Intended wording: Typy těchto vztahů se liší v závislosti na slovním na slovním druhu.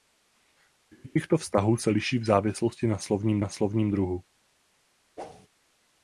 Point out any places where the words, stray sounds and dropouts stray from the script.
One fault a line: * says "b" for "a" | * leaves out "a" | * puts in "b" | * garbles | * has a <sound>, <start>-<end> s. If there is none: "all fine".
* has a whoosh, 5.2-5.5 s